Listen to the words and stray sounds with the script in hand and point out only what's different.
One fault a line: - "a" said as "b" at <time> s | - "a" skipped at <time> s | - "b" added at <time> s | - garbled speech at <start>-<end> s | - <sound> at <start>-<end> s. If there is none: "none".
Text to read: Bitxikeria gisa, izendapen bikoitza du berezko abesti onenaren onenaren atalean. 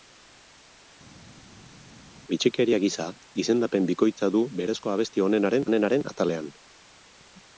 none